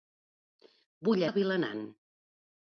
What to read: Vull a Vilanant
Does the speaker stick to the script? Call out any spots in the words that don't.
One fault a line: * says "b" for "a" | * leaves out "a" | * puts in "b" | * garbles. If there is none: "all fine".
all fine